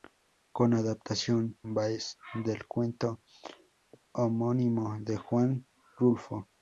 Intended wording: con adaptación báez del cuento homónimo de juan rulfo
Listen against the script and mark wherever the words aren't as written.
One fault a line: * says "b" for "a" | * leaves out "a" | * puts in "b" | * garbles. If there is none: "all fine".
all fine